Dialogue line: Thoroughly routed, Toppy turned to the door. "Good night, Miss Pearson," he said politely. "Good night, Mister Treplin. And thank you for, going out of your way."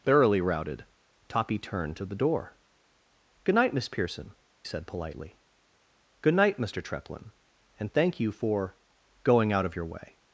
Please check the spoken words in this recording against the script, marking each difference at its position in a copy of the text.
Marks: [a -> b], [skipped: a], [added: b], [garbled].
Thoroughly routed, Toppy turned to the door. "Good night, Miss Pearson," [skipped: he] said politely. "Good night, Mister Treplin. And thank you for, going out of your way."